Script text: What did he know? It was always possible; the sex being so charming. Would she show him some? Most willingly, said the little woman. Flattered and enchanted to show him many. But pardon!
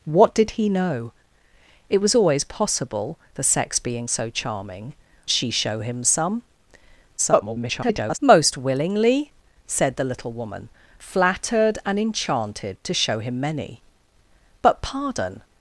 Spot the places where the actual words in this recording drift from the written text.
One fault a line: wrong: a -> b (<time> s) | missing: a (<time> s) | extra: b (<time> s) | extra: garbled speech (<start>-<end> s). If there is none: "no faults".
missing: Would (4.9 s)
extra: garbled speech (7.2-8.2 s)